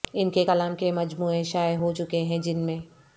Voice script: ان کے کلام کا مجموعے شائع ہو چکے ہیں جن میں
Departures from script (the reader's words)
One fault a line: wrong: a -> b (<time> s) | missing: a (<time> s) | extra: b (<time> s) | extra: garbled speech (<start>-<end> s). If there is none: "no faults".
wrong: کا -> کے (0.7 s)